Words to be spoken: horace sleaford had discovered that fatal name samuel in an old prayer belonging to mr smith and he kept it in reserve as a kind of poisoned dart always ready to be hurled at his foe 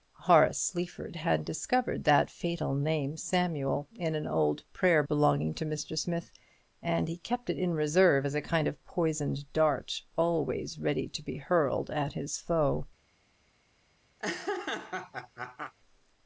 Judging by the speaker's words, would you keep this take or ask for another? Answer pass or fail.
pass